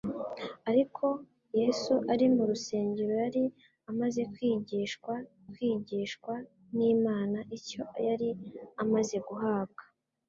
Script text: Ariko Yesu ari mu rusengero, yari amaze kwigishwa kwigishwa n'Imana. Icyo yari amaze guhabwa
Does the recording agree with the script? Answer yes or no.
yes